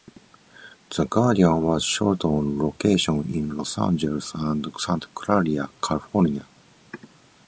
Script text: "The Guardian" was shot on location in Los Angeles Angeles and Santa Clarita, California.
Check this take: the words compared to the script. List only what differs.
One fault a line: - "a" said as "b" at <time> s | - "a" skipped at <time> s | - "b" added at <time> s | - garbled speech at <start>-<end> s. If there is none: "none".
- "Angeles" skipped at 4.3 s